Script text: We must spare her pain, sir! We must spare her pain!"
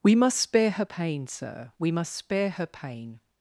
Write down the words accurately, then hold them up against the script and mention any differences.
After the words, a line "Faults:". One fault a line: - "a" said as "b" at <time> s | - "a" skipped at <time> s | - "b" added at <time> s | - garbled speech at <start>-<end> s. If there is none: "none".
We must spare her pain, sir! We must spare her pain!"
Faults:
none